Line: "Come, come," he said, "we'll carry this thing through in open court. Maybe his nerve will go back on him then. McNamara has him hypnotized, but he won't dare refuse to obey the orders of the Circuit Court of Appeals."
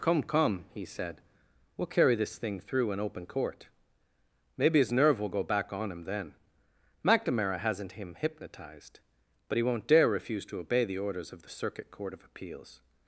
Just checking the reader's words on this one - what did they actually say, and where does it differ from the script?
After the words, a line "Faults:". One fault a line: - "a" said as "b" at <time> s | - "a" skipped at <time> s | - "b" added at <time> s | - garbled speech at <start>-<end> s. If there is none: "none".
"Come, come," he said, "we'll carry this thing through in open court. Maybe his nerve will go back on him then. McNamara hasn't him hypnotized, but he won't dare refuse to obey the orders of the Circuit Court of Appeals."
Faults:
- "has" said as "hasn't" at 7.6 s